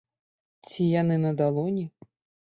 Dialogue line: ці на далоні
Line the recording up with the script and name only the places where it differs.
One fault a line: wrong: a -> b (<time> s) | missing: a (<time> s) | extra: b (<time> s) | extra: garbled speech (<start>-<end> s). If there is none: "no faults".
extra: яны (1.0 s)